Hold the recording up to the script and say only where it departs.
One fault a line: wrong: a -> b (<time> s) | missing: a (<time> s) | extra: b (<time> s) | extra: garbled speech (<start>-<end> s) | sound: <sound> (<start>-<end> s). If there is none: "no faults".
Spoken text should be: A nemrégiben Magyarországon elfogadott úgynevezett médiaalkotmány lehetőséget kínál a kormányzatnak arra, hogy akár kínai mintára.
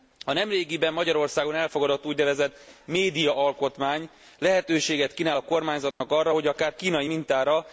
sound: dropout (5.9-6.0 s)